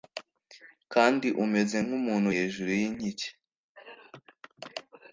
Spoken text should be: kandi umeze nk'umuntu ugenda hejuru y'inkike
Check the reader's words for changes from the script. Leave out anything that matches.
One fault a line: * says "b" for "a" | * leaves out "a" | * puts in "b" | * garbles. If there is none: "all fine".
* leaves out "ugenda"